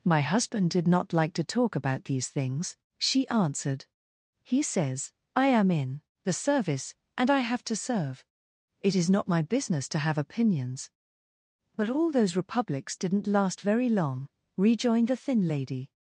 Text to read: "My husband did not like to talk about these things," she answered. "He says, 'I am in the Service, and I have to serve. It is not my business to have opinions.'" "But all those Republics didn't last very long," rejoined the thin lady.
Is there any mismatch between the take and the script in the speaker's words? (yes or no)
no